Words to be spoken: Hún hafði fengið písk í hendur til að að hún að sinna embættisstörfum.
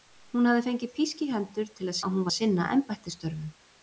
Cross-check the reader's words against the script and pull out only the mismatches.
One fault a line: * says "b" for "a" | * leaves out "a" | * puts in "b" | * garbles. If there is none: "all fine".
all fine